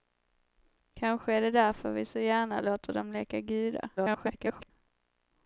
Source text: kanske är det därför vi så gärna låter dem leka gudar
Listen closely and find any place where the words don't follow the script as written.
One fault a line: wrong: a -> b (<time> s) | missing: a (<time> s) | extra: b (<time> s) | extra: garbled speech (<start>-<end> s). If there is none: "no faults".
extra: garbled speech (4.0-4.7 s)